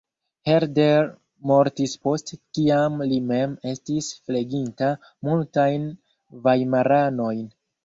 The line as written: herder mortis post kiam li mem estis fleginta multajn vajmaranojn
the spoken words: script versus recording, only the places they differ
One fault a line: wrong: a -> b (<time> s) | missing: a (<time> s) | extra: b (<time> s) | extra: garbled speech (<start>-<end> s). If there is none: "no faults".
no faults